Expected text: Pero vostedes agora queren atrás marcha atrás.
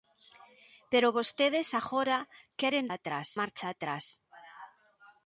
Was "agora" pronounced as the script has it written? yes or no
yes